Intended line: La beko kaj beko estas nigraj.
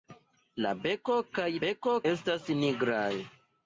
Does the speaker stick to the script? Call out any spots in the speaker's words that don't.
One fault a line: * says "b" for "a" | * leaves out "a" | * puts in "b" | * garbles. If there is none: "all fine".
all fine